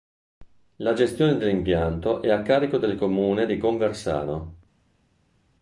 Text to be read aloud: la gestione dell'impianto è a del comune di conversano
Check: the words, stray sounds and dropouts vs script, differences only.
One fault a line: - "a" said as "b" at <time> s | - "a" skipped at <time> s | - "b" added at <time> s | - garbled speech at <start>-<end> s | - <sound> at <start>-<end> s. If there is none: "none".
- "carico" added at 2.4 s